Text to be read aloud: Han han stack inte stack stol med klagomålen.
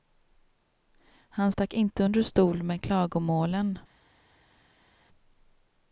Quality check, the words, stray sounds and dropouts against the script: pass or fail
fail